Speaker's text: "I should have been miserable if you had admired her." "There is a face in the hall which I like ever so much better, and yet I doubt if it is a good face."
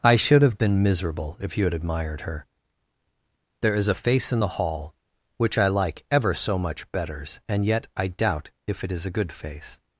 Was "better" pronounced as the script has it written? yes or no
no